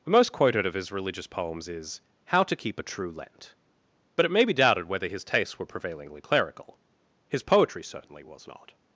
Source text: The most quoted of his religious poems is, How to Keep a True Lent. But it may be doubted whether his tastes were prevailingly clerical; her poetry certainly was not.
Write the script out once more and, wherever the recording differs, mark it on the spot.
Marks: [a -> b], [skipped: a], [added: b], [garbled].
The most quoted of his religious poems is, How to Keep a True Lent. But it may be doubted whether his tastes were prevailingly clerical; [her -> his] poetry certainly was not.